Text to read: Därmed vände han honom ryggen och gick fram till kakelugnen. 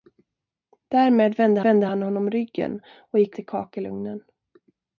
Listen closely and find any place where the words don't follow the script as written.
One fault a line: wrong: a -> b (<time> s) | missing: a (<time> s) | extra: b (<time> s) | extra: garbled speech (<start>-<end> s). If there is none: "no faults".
extra: vände (1.6 s)
missing: fram (3.4 s)